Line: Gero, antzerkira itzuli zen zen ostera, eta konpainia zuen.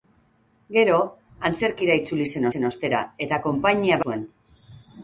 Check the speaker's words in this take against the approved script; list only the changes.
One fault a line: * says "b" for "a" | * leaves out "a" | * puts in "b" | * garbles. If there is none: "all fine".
all fine